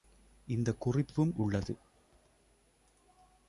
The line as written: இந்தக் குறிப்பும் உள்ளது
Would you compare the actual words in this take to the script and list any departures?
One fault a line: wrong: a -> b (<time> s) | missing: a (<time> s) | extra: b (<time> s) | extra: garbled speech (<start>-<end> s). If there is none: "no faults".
no faults